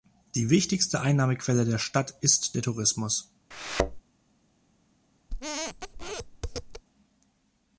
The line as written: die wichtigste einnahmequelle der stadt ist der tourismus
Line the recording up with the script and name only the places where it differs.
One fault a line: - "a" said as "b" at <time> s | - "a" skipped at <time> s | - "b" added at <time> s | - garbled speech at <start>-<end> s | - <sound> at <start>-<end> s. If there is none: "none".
- thud at 3.5-4.0 s
- squeak at 5.3-6.8 s